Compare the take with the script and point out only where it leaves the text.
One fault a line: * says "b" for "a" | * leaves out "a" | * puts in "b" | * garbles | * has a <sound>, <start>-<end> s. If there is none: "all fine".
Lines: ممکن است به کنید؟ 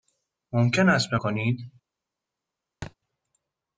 * has a thud, 2.8-2.9 s